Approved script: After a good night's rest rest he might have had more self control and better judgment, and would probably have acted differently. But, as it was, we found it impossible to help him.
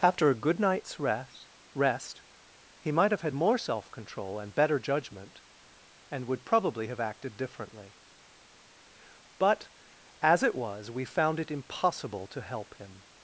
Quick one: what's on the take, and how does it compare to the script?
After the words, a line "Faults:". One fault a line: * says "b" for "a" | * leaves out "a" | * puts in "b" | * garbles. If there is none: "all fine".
After a good night's rest rest he might have had more self control and better judgment, and would probably have acted differently. But, as it was, we found it impossible to help him.
Faults:
all fine